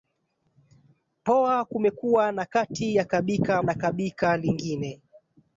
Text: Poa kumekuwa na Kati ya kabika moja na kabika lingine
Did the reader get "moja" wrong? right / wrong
wrong